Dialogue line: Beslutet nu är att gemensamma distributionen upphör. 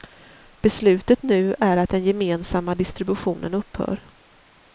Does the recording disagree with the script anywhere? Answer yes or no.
yes